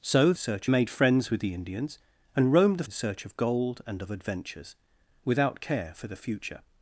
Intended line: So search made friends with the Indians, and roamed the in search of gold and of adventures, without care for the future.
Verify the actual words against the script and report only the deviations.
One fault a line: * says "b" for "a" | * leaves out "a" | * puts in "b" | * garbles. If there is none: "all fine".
all fine